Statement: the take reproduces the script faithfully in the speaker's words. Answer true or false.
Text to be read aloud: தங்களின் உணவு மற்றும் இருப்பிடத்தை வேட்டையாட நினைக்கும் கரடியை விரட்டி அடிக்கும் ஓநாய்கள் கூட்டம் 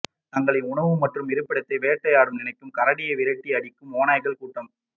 true